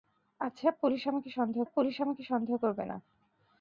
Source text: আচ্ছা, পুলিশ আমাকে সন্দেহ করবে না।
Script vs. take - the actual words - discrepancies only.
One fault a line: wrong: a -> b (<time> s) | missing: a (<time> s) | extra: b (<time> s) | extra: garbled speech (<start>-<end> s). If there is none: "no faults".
extra: পুলিশ আমাকে সন্দেহ (1.6 s)